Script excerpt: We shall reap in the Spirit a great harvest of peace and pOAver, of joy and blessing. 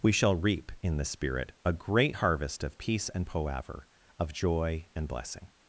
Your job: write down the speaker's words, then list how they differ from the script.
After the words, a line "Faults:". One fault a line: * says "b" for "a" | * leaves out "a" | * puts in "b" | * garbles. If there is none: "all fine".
We shall reap in the Spirit a great harvest of peace and pOAver, of joy and blessing.
Faults:
all fine